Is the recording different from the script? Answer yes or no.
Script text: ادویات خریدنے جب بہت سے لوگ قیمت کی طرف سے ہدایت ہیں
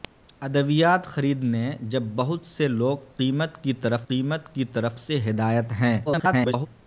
yes